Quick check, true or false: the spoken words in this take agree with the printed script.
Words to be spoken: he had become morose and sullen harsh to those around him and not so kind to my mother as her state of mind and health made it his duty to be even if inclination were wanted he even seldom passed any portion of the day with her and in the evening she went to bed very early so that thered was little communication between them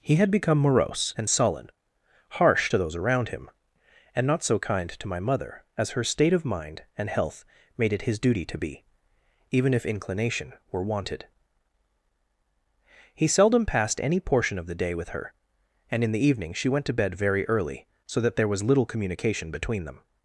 false